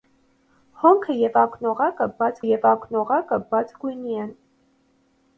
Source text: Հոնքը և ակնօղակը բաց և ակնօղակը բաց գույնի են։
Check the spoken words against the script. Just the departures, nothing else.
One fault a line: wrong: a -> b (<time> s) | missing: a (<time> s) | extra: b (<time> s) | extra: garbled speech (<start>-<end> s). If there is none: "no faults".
no faults